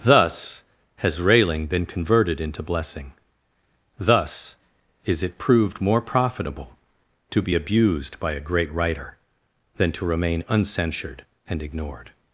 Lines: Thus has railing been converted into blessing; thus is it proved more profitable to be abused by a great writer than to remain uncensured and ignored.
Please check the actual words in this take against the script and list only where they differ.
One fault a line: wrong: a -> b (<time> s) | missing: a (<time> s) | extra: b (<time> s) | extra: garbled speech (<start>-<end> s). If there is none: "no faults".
no faults